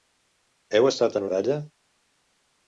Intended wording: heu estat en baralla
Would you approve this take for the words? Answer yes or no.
yes